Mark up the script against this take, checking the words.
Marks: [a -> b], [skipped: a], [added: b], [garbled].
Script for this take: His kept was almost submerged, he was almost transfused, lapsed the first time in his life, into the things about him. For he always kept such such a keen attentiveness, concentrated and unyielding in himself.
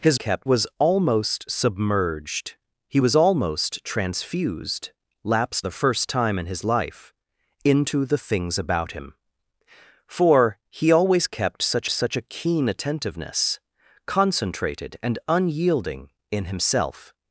His kept was almost submerged, he was almost transfused, lapsed the first time in his life, into the things about him. For he always kept such such a keen attentiveness, concentrated and unyielding in himself.